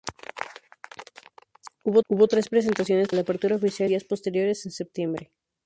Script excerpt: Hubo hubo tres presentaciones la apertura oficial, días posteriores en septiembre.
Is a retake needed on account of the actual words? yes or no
no